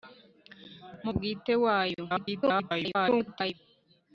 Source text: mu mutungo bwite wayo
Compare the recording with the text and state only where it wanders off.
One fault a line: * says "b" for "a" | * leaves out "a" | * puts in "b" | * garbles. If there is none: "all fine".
* leaves out "mutungo"
* garbles